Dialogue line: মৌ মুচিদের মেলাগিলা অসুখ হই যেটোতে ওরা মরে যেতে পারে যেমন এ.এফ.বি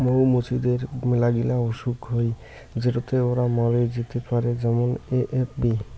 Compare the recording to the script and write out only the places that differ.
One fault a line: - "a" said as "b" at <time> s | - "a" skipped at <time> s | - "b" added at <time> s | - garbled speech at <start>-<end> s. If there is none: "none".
none